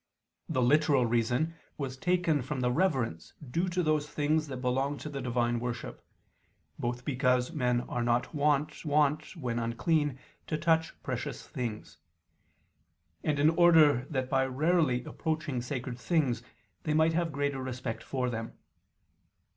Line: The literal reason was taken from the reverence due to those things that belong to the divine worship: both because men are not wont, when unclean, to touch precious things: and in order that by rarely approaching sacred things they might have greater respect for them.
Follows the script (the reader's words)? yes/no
no